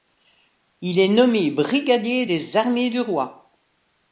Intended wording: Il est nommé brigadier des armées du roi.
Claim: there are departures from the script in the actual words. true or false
false